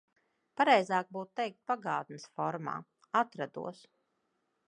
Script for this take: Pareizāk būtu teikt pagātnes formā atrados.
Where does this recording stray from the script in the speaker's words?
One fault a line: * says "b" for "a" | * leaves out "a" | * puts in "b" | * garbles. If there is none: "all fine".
all fine